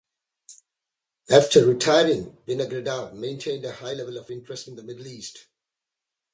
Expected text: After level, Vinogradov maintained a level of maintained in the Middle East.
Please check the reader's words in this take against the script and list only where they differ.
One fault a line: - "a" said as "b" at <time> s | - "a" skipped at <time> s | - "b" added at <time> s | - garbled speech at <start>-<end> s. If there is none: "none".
- "level" said as "retiring" at 1.6 s
- "high" added at 3.7 s
- "maintained" said as "interest" at 4.3 s